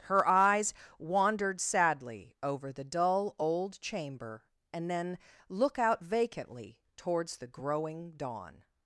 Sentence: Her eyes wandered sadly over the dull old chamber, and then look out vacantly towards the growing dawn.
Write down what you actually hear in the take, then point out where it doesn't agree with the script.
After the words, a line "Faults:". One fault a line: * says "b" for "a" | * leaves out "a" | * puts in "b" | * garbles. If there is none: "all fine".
Her eyes wandered sadly over the dull old chamber, and then look out vacantly towards the growing dawn.
Faults:
all fine